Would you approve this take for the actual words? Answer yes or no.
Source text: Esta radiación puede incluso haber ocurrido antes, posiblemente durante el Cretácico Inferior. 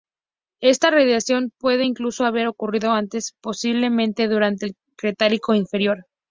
yes